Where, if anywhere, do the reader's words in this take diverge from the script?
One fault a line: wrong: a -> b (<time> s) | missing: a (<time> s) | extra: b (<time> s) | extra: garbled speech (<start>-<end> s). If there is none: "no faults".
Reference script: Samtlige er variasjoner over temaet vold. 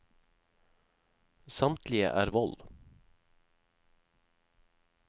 missing: variasjoner over temaet (2.3 s)